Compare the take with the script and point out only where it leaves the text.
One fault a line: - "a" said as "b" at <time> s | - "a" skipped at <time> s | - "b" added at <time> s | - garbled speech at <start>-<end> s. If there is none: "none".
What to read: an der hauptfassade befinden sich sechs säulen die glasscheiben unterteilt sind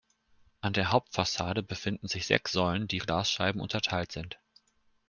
none